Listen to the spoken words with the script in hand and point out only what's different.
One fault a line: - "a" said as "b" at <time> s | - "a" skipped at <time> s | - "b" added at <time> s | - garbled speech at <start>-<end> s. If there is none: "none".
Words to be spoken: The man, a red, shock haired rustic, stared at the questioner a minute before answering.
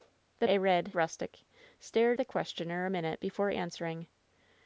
- "man" skipped at 0.5 s
- "shock haired" skipped at 0.9 s
- "at" skipped at 2.2 s